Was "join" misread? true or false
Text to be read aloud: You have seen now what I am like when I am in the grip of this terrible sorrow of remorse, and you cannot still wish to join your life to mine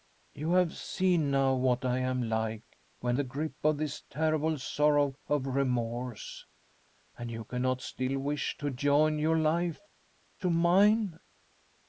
false